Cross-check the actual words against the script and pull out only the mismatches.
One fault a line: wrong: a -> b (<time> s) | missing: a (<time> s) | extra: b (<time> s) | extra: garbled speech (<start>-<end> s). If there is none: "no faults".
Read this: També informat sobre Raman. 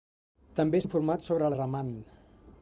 no faults